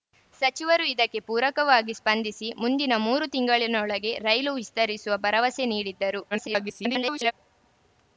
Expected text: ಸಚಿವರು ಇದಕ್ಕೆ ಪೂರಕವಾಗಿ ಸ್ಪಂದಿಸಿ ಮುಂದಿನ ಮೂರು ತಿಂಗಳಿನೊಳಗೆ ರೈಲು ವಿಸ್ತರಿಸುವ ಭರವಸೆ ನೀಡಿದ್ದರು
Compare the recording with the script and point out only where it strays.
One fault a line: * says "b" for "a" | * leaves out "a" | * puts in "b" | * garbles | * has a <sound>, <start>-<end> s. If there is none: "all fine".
* garbles